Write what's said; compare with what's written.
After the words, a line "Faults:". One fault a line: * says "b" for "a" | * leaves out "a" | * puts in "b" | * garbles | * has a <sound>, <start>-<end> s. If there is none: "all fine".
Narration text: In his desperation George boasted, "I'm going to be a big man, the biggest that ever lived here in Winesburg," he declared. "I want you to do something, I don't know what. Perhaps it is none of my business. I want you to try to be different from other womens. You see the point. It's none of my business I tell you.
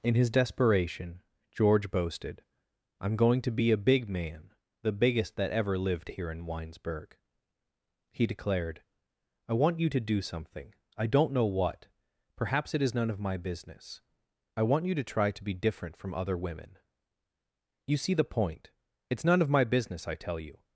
In his desperation George boasted, "I'm going to be a big man, the biggest that ever lived here in Winesburg," he declared. "I want you to do something, I don't know what. Perhaps it is none of my business. I want you to try to be different from other women. You see the point. It's none of my business I tell you.
Faults:
* says "women" for "womens"